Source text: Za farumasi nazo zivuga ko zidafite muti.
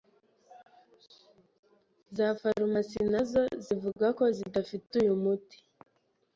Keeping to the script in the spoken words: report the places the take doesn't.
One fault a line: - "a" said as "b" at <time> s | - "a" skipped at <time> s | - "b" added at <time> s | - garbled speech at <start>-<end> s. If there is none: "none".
- "uyu" added at 5.0 s